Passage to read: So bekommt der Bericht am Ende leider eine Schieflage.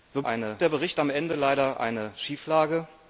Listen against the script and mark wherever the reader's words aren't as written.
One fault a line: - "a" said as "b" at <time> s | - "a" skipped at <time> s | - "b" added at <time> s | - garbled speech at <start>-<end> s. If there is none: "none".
- "bekommt" said as "eine" at 0.2 s